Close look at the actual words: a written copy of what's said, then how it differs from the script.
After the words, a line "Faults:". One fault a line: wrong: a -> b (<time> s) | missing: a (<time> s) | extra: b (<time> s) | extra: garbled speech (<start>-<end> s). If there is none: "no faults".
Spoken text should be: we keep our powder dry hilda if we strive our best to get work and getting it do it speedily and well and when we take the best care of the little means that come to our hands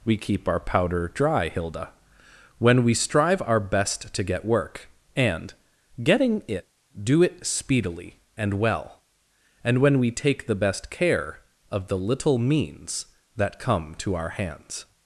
we keep our powder dry hilda when we strive our best to get work and getting it do it speedily and well and when we take the best care of the little means that come to our hands
Faults:
wrong: if -> when (2.6 s)